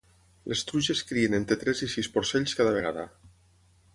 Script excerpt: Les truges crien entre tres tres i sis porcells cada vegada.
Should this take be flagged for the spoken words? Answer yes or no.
yes